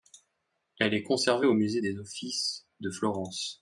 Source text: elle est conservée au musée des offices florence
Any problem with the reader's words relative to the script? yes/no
yes